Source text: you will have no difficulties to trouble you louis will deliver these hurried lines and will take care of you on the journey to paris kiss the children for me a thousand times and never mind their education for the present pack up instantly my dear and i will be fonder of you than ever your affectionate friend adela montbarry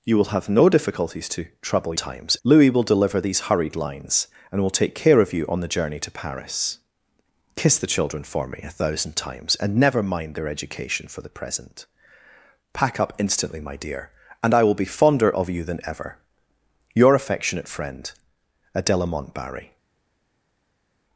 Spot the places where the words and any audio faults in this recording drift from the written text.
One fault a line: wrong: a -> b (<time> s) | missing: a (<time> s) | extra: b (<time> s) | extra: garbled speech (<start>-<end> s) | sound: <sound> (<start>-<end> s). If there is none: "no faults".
wrong: you -> times (2.0 s)